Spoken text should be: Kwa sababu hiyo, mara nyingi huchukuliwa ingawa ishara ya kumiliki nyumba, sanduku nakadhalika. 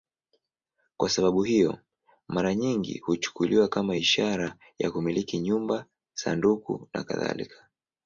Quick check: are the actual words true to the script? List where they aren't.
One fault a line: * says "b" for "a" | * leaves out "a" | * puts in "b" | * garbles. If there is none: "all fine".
* says "kama" for "ingawa"